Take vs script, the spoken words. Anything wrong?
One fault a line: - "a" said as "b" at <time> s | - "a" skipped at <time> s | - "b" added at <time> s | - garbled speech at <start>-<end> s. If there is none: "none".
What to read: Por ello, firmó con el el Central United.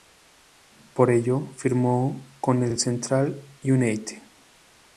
none